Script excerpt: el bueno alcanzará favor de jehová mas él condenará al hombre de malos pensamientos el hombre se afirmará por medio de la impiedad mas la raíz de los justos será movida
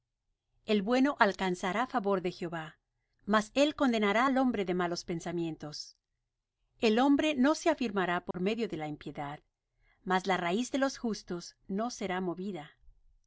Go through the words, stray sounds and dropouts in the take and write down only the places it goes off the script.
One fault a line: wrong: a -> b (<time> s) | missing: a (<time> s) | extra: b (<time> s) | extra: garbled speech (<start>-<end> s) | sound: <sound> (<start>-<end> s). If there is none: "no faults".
extra: no (7.3 s)
sound: dropout (8.3-8.3 s)
extra: no (11.7 s)